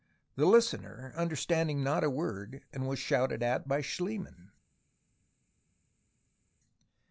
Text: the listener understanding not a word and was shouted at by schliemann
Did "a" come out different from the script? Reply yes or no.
no